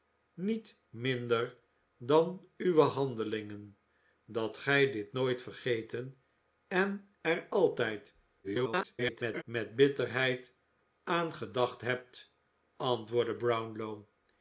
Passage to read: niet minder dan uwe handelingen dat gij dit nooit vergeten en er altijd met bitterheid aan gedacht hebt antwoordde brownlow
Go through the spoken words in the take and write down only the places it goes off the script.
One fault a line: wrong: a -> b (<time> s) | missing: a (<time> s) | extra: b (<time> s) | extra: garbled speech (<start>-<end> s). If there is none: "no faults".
extra: garbled speech (8.4-9.4 s)